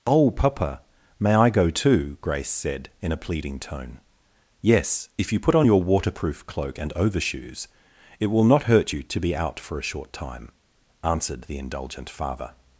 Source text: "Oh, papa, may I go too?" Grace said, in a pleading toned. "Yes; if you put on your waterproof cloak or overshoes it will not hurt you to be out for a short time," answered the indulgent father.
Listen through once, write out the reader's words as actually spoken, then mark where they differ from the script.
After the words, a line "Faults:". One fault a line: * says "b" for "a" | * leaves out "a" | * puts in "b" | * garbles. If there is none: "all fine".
"Oh, papa, may I go too?" Grace said, in a pleading tone. "Yes; if you put on your waterproof cloak and overshoes it will not hurt you to be out for a short time," answered the indulgent father.
Faults:
* says "tone" for "toned"
* says "and" for "or"